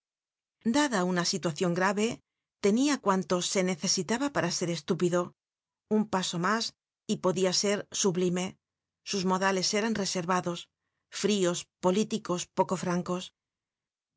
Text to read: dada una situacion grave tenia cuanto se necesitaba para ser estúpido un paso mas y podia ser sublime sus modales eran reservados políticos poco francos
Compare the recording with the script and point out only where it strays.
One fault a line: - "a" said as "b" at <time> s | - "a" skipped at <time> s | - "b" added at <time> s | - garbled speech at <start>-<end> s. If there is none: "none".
- "frios" added at 11.2 s